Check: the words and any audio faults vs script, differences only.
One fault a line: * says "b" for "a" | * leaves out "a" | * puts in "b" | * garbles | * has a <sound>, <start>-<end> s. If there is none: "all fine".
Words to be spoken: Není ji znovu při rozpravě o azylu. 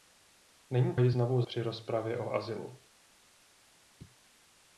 all fine